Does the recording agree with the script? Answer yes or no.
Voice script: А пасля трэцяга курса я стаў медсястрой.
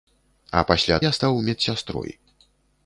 no